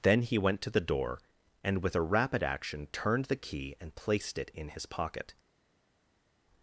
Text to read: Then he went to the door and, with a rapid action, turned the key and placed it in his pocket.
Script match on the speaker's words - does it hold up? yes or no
yes